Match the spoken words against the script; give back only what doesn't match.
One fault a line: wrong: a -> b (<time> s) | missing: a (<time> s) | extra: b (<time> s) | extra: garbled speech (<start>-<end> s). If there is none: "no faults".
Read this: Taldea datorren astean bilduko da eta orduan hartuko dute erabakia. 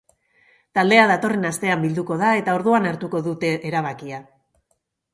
no faults